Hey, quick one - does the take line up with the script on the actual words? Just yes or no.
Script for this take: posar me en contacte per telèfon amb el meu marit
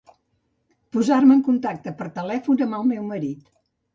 yes